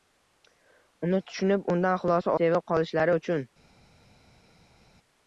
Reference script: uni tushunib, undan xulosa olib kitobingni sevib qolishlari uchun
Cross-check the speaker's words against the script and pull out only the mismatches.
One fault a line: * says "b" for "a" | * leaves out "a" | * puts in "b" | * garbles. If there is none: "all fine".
* leaves out "olib kitobingni"